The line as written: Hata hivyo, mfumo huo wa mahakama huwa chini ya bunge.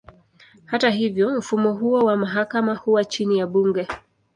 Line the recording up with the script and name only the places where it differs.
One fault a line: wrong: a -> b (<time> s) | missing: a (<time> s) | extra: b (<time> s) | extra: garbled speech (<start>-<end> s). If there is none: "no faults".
no faults